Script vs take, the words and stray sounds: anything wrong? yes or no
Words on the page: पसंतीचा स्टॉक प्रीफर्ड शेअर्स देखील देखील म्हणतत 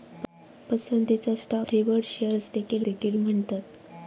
no